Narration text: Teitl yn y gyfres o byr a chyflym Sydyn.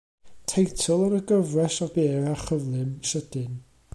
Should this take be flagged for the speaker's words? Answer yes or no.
no